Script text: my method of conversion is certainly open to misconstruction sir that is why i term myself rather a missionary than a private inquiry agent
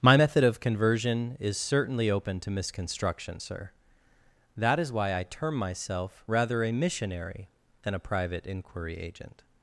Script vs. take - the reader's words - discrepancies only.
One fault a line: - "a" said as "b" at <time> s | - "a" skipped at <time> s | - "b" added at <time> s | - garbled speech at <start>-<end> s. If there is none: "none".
none